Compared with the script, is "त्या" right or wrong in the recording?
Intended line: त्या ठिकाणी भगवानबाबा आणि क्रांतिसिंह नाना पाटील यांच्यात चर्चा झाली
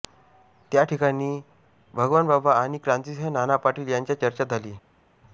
right